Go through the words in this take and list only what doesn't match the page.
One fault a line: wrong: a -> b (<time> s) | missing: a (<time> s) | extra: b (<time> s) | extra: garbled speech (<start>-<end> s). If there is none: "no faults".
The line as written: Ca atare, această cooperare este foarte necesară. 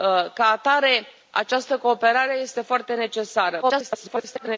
extra: garbled speech (3.6-4.6 s)